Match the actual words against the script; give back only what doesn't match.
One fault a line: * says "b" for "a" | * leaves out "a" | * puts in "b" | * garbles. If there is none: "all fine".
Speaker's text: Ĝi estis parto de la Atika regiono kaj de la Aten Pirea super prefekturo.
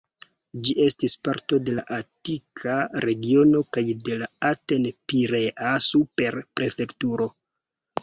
all fine